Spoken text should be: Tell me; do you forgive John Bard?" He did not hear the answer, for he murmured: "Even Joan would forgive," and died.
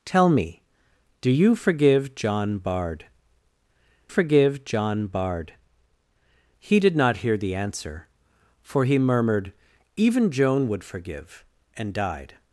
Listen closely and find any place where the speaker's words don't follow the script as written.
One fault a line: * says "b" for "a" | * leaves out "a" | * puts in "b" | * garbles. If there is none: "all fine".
* puts in "forgive John Bard"